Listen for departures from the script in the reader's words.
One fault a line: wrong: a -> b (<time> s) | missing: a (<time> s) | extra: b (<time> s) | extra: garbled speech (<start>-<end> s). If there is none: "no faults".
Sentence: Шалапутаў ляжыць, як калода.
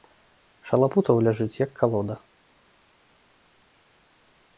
no faults